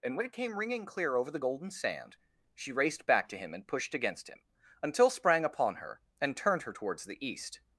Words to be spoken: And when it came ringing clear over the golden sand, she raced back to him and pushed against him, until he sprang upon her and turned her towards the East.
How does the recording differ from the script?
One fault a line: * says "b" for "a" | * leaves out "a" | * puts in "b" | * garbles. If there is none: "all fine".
* leaves out "he"